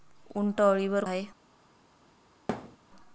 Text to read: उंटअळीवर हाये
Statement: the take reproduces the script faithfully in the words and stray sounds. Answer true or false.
false